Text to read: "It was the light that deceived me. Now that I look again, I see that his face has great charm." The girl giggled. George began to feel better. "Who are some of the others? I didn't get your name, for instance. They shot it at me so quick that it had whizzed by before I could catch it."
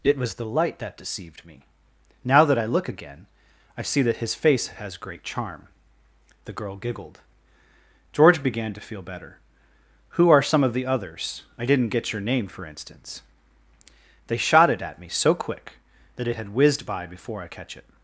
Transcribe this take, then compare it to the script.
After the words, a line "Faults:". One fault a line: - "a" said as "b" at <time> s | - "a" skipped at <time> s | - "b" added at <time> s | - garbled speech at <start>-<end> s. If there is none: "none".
"It was the light that deceived me. Now that I look again, I see that his face has great charm." The girl giggled. George began to feel better. "Who are some of the others? I didn't get your name, for instance. They shot it at me so quick that it had whizzed by before I catch it."
Faults:
- "could" skipped at 17.5 s